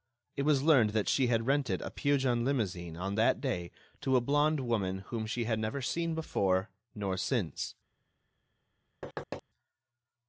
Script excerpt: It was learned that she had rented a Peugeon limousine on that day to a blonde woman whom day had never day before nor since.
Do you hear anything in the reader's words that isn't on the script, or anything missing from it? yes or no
yes